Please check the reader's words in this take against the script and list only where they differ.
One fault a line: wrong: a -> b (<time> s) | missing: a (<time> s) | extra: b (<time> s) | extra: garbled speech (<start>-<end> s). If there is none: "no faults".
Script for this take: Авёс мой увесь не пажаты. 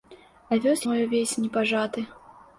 no faults